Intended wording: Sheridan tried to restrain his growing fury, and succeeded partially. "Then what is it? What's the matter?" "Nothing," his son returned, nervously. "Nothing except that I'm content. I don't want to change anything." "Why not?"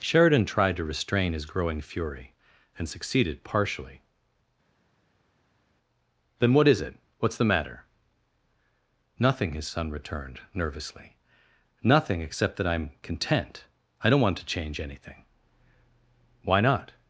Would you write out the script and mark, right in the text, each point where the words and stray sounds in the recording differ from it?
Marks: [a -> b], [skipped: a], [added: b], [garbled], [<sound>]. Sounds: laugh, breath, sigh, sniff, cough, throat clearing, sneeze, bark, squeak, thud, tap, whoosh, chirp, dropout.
Sheridan tried to restrain his growing fury, and succeeded partially. "Then what is it? What's the matter?" "Nothing," his son returned, nervously. "Nothing except that I'm content. I don't want to change anything." "Why not?"